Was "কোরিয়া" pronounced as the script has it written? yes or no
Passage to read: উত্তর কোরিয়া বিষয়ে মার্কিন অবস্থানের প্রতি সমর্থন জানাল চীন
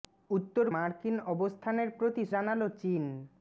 no